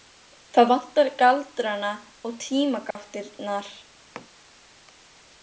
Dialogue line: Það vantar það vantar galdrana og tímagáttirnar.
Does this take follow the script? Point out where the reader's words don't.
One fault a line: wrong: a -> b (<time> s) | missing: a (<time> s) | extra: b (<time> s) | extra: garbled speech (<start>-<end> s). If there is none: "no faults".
missing: það vantar (1.1 s)